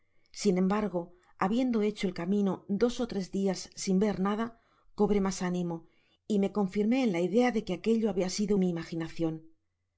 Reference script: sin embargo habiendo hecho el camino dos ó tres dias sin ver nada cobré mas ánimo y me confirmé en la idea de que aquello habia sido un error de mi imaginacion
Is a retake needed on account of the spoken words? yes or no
yes